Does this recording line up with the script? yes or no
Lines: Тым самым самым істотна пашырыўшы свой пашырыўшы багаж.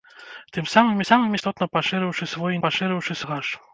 yes